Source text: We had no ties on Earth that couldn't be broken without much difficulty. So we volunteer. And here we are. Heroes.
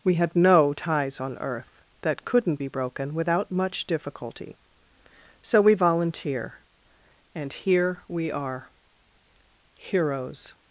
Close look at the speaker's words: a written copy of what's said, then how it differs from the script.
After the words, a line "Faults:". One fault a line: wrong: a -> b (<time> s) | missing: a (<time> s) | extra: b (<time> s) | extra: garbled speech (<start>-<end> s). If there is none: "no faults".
We had no ties on Earth that couldn't be broken without much difficulty. So we volunteer. And here we are. Heroes.
Faults:
no faults